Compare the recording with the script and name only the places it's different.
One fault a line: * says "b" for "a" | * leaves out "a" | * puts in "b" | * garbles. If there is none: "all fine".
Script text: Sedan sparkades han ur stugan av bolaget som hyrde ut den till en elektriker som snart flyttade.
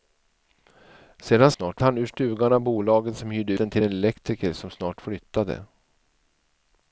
* says "snart" for "sparkades"
* leaves out "ut"